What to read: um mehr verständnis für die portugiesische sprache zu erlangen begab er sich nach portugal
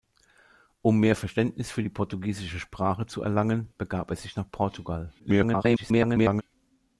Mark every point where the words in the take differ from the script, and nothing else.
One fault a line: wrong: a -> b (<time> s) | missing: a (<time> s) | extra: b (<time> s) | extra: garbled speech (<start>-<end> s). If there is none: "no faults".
extra: garbled speech (5.2-6.4 s)